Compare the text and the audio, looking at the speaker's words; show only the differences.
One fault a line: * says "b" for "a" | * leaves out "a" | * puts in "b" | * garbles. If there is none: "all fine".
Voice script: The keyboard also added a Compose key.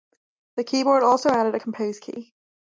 all fine